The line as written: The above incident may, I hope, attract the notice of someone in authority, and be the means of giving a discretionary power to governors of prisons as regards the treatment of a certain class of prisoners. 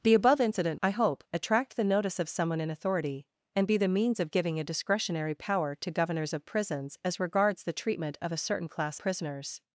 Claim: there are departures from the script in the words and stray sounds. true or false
true